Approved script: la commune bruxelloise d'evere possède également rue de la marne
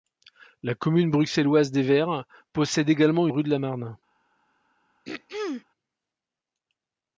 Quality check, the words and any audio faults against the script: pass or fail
fail